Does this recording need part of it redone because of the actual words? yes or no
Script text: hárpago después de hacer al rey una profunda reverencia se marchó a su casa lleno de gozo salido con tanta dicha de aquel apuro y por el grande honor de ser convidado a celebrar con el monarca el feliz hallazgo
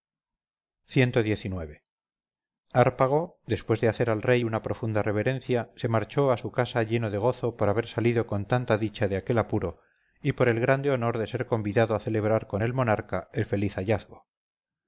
yes